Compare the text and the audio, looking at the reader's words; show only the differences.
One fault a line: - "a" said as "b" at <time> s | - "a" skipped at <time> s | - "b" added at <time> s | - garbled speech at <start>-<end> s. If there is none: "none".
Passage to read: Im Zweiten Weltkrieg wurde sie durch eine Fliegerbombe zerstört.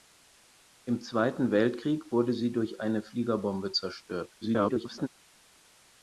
- garbled speech at 4.4-5.1 s